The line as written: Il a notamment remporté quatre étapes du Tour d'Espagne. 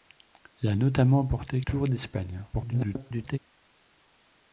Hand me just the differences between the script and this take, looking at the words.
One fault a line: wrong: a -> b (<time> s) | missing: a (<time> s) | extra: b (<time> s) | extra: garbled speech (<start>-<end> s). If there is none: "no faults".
missing: quatre étapes du (1.6 s)
extra: garbled speech (2.5-3.4 s)